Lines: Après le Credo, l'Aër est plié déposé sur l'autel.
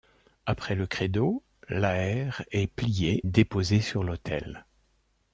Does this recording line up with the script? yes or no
yes